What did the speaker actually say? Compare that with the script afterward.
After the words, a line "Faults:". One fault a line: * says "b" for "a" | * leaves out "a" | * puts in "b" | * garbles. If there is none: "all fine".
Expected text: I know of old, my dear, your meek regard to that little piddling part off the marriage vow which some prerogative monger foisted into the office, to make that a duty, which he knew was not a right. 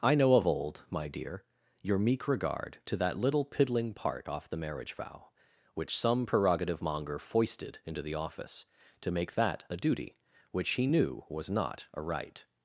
I know of old, my dear, your meek regard to that little piddling part off the marriage vow which some prerogative monger foisted into the office, to make that a duty, which he knew was not a right.
Faults:
all fine